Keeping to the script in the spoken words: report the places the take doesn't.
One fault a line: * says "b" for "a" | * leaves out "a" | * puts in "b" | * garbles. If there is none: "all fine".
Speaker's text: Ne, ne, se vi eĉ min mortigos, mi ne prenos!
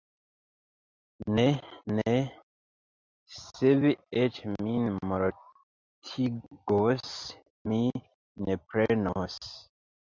all fine